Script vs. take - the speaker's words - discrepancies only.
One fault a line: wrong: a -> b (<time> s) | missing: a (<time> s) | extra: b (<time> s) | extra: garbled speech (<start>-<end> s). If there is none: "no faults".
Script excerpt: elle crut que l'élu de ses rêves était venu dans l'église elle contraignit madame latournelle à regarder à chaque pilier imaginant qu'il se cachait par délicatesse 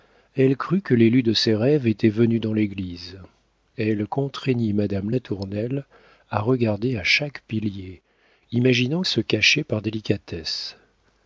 missing: qu'il (9.0 s)